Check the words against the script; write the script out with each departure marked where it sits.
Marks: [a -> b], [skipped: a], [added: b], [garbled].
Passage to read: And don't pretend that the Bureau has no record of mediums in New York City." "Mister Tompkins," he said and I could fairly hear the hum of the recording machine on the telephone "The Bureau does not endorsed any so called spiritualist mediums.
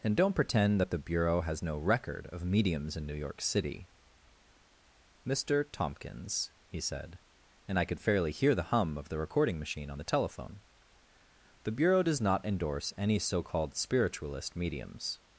And don't pretend that the Bureau has no record of mediums in New York City." "Mister Tompkins," he said and I could fairly hear the hum of the recording machine on the telephone "The Bureau does not [endorsed -> endorse] any so called spiritualist mediums.